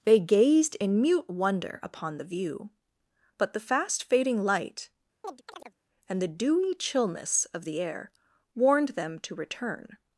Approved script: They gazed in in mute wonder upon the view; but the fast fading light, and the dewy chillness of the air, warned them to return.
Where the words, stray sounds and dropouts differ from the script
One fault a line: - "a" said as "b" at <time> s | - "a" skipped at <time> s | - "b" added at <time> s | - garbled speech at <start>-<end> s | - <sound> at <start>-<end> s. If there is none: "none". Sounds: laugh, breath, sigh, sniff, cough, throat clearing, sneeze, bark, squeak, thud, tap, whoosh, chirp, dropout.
- "in" skipped at 1.0 s
- chirp at 5.2-5.8 s